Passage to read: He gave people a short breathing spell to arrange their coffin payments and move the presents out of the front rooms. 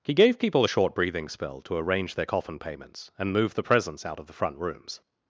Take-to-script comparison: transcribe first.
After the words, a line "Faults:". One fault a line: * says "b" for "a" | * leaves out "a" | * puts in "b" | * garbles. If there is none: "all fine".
He gave people a short breathing spell to arrange their coffin payments and move the presents out of the front rooms.
Faults:
all fine